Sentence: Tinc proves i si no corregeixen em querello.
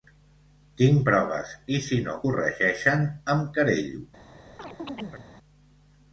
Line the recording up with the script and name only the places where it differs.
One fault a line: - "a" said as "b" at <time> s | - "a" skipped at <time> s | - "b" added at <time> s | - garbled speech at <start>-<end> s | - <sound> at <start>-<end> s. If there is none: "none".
- chirp at 4.6-5.3 s